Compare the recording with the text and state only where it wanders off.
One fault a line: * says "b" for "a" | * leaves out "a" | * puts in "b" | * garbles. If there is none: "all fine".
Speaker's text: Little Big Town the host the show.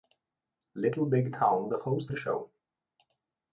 all fine